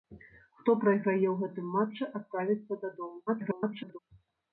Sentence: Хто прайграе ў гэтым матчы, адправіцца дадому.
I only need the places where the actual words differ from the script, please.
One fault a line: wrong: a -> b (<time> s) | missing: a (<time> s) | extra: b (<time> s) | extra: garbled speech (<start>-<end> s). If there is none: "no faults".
extra: garbled speech (3.3-4.0 s)